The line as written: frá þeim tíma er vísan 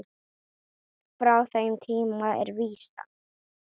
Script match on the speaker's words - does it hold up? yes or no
yes